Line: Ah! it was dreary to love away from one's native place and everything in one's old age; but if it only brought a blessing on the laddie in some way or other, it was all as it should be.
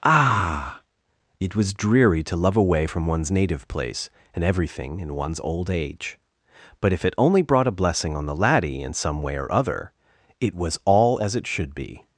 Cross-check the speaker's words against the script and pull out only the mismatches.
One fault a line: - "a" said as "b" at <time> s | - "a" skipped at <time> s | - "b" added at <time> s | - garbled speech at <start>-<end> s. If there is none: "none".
none